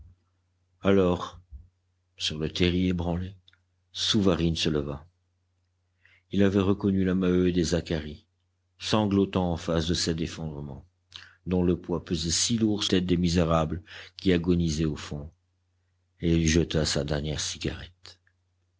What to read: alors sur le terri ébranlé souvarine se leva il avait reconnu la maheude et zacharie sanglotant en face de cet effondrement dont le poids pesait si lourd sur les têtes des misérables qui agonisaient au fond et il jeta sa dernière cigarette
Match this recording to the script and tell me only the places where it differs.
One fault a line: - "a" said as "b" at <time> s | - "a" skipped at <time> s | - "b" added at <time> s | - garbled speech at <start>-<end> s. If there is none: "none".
- "sur les" skipped at 12.8 s